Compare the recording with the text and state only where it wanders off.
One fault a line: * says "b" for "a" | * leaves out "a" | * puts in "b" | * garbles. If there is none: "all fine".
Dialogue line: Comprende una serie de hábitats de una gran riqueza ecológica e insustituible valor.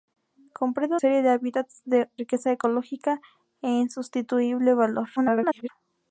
* leaves out "una"
* leaves out "una gran"
* garbles